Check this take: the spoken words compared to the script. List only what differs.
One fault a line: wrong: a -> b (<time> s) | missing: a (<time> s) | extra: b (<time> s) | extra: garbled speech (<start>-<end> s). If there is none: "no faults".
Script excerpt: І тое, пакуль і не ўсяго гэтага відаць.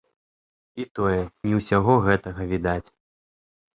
missing: пакуль і (1.2 s)